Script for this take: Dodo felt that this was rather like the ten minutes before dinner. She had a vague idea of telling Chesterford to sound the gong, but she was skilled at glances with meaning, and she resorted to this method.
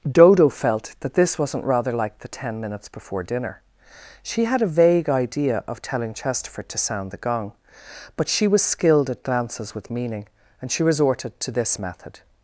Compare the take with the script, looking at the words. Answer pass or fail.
fail